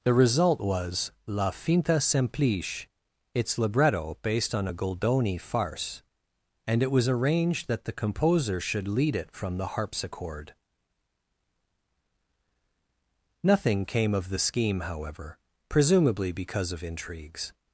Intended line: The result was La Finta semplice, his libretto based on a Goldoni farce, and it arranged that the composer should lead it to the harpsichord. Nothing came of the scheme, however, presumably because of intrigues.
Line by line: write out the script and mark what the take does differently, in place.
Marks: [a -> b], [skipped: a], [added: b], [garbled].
The result was La Finta semplice, [his -> its] libretto based on a Goldoni farce, and it [added: was] arranged that the composer should lead it [to -> from] the harpsichord. Nothing came of the scheme, however, presumably because of intrigues.